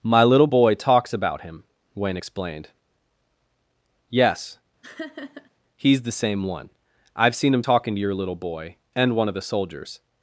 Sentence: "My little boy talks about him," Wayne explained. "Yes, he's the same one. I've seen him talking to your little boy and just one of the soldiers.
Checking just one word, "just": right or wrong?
wrong